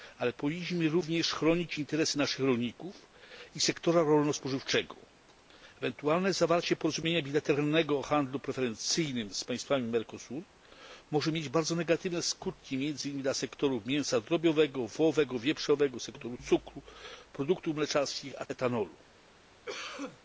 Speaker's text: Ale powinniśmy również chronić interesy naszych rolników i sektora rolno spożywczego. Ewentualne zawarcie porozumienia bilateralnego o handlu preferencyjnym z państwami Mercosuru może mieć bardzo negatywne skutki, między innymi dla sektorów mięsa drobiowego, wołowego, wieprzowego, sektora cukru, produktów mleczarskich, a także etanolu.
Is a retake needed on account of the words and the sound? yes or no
yes